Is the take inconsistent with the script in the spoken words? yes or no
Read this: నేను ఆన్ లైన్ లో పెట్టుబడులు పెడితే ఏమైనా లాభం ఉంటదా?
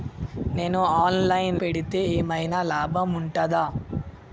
yes